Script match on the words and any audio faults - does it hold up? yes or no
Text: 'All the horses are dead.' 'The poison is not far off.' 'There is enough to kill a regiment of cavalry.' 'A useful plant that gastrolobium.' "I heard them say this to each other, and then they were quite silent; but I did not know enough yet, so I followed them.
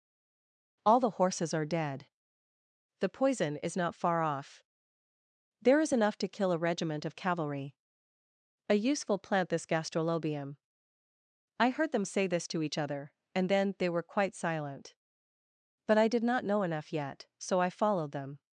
no